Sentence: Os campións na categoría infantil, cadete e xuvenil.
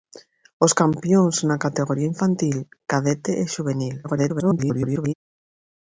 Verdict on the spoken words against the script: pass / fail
fail